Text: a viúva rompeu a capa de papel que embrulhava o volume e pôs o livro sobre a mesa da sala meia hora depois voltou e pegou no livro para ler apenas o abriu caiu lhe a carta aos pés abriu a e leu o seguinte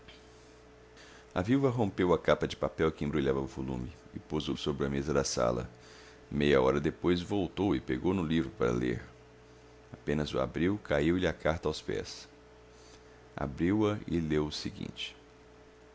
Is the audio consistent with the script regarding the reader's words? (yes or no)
no